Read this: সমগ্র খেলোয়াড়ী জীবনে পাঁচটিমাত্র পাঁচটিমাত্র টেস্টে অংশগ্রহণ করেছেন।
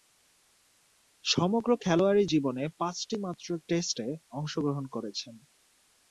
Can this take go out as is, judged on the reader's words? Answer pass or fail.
fail